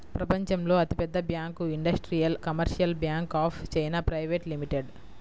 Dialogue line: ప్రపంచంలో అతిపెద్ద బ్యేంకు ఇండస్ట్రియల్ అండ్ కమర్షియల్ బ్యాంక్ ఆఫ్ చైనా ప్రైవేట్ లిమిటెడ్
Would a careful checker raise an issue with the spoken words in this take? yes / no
yes